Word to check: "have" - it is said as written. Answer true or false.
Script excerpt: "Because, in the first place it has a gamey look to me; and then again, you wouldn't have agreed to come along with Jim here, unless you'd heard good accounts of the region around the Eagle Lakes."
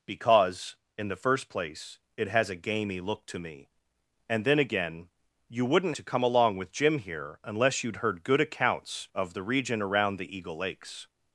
false